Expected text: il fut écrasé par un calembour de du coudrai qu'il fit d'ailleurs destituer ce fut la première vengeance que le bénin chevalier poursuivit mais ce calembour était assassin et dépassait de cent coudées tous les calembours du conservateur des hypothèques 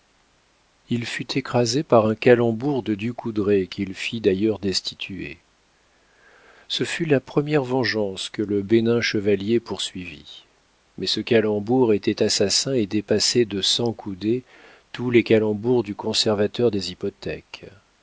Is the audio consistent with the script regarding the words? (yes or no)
yes